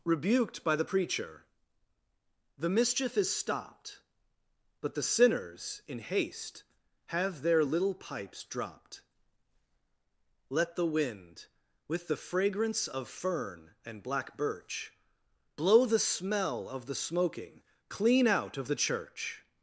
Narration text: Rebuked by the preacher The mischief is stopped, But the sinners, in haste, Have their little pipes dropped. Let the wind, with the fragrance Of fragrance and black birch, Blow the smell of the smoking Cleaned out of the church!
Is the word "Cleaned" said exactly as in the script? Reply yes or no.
no